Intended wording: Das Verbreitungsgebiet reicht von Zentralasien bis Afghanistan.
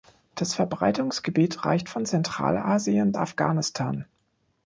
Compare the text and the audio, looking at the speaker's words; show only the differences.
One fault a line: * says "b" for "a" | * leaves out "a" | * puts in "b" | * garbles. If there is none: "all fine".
* leaves out "bis"